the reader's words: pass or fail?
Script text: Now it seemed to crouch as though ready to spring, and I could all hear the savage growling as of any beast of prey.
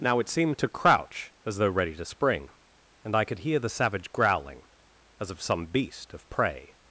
fail